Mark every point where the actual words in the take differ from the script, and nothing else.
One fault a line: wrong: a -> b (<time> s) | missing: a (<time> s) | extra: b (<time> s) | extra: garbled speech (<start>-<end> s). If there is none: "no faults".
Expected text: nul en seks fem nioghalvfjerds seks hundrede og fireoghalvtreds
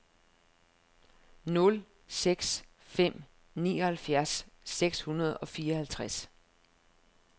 missing: en (1.9 s)